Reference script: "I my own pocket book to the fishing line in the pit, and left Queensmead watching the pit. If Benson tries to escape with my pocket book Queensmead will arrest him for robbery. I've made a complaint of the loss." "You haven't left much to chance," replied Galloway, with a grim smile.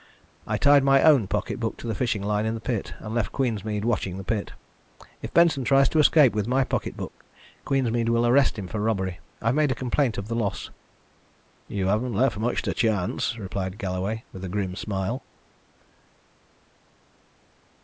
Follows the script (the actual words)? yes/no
no